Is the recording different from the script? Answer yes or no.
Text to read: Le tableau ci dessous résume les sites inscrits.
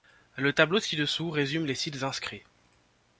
no